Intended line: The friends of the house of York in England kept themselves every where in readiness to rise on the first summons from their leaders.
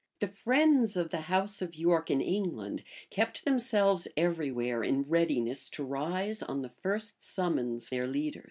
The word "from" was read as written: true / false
false